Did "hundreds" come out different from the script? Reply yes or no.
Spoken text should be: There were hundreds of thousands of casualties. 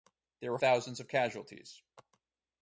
yes